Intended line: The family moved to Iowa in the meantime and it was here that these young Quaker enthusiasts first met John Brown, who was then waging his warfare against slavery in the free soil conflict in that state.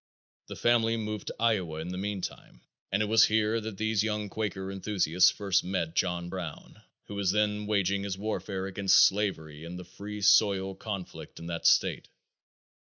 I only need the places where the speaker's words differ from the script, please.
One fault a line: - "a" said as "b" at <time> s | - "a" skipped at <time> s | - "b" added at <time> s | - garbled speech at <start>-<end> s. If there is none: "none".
none